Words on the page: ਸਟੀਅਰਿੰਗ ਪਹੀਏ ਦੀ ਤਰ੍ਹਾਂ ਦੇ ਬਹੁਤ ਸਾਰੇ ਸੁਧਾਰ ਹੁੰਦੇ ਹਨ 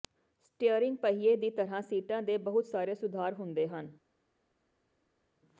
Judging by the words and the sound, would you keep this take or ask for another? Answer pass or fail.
fail